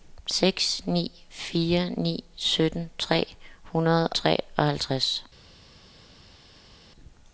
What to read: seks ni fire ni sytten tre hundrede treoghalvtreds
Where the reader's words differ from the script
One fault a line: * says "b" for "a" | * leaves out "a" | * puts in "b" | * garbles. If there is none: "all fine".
all fine